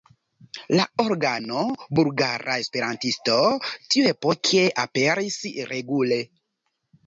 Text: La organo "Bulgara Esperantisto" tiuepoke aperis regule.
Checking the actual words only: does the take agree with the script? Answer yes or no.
yes